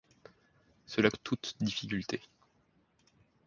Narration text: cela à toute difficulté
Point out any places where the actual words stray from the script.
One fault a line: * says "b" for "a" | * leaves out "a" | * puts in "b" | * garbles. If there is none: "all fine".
all fine